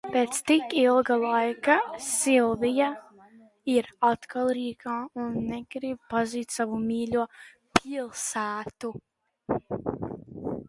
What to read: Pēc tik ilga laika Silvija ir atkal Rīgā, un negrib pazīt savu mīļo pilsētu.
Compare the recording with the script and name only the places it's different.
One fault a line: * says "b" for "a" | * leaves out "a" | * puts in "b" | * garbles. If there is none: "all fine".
all fine